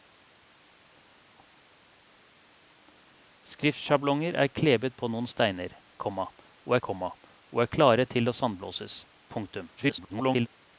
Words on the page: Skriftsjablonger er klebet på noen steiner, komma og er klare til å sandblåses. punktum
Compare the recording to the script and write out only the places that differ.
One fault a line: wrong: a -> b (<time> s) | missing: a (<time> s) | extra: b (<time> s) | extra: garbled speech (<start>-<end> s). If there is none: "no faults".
extra: komma og (6.8 s)
extra: garbled speech (9.8-10.5 s)